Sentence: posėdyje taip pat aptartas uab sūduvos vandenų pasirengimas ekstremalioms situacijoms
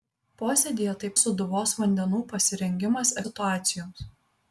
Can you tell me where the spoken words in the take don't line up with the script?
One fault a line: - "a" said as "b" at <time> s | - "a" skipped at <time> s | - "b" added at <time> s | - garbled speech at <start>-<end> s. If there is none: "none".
- "pat aptartas uab" skipped at 1.1 s
- "ekstremalioms" skipped at 3.2 s